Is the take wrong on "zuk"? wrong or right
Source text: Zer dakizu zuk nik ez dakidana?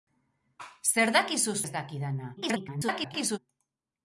wrong